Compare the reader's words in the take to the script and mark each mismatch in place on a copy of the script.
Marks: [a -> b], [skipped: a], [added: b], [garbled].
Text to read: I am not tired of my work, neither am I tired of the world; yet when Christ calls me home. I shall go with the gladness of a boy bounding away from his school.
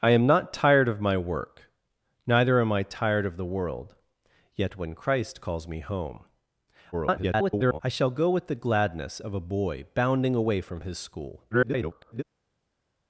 I am not tired of my work, neither am I tired of the world; yet when Christ calls me home. [garbled] I shall go with the gladness of a boy bounding away from his school. [garbled]